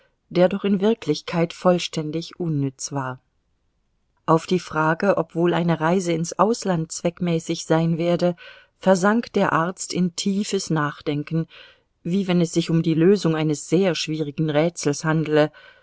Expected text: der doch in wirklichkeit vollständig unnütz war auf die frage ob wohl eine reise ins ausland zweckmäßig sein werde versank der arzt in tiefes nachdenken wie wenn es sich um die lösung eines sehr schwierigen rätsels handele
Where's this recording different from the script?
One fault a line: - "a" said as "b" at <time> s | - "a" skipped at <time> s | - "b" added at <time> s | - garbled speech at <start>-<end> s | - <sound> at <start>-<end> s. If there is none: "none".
none